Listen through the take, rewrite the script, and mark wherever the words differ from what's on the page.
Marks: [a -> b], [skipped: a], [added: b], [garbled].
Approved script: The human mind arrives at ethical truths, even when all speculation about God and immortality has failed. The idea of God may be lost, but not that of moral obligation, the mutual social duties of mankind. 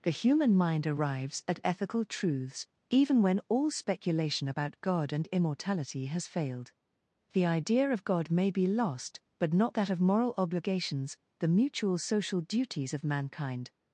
The human mind arrives at ethical truths, even when all speculation about God and immortality has failed. The idea of God may be lost, but not that of moral [obligation, -> obligations] the mutual social duties of mankind.